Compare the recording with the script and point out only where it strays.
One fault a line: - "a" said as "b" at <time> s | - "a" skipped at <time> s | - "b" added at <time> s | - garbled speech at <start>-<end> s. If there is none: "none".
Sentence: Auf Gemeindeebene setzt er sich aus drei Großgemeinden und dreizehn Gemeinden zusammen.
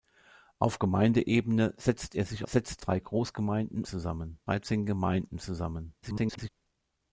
- "aus" said as "setzt" at 2.4 s
- "und" said as "zusammen" at 3.8 s
- garbled speech at 6.0-6.5 s